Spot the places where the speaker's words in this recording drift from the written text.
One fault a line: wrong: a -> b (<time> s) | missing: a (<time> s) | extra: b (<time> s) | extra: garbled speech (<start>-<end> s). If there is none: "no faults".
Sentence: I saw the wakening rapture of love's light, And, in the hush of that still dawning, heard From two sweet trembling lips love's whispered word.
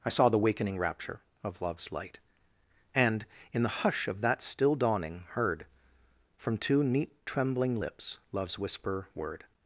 wrong: sweet -> neat (6.8 s)
wrong: whispered -> whisper (8.6 s)